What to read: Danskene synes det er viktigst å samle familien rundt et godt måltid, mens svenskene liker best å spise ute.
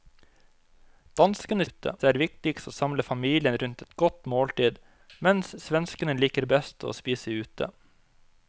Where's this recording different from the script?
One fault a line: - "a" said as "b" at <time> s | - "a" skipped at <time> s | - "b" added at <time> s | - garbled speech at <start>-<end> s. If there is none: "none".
- "synes" said as "ute" at 1.7 s